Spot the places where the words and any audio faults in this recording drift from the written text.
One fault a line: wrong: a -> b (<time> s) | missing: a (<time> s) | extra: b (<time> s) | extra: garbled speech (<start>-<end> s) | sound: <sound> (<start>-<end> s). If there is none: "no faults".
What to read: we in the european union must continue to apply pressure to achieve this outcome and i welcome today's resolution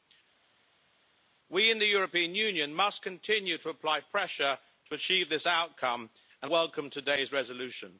missing: i (6.5 s)